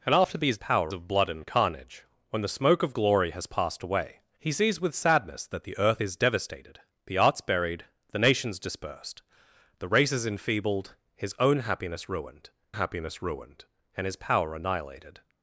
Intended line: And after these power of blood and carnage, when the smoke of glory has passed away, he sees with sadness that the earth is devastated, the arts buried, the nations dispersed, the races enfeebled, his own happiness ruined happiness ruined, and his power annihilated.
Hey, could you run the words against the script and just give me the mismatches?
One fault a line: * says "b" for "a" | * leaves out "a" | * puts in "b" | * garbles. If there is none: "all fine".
all fine